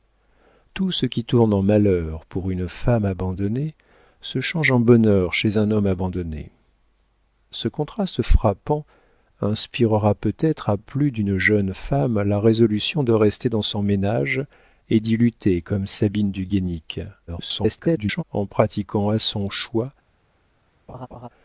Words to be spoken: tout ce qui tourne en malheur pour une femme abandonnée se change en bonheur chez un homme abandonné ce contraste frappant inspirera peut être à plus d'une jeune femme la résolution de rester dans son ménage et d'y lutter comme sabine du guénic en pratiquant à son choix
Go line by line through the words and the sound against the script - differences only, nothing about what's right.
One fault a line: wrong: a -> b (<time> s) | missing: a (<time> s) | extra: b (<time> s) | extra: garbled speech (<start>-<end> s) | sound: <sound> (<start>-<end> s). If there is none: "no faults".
extra: garbled speech (17.3-18.2 s)
sound: laugh (20.9-21.3 s)